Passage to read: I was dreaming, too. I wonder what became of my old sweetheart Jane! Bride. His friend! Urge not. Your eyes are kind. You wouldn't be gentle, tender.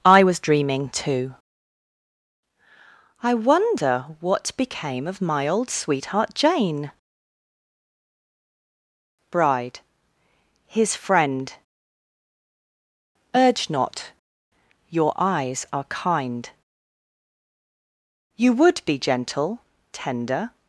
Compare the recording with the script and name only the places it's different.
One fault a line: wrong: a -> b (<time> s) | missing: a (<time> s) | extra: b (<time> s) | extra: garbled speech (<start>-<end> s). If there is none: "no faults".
wrong: wouldn't -> would (18.5 s)